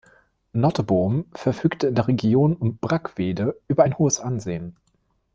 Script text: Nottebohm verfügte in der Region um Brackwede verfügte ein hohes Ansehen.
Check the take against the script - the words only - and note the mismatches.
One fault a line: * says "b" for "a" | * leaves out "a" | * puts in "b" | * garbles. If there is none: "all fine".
* says "über" for "verfügte"